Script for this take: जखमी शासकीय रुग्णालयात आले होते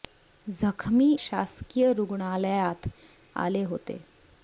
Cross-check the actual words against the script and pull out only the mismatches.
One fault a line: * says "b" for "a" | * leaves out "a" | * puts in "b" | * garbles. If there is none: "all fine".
all fine